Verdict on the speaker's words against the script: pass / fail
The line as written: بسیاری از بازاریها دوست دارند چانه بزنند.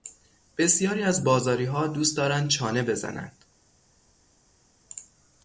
pass